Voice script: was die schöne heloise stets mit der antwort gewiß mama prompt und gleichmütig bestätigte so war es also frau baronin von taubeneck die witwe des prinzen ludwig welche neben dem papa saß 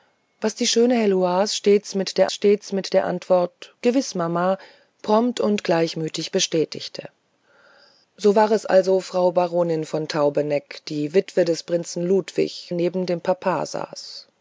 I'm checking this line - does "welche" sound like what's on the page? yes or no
no